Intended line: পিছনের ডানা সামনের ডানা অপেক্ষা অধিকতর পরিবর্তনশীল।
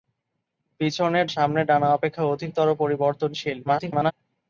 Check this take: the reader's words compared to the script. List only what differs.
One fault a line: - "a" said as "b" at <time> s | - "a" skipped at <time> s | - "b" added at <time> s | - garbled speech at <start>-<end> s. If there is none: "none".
- "ডানা" skipped at 1.2 s
- garbled speech at 3.6-4.1 s